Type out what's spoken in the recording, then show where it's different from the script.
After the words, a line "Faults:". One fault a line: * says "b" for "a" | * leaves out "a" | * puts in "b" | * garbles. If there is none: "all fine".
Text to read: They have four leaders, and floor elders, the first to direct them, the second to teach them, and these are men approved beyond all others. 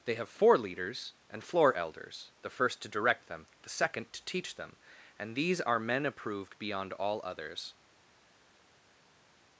They have four leaders, and floor elders, the first to direct them, the second to teach them, and these are men approved beyond all others.
Faults:
all fine